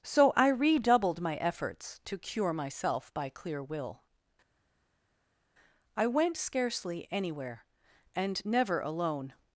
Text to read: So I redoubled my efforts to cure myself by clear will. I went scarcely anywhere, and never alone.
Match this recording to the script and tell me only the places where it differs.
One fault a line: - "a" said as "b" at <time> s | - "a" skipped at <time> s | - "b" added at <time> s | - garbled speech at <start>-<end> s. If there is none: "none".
none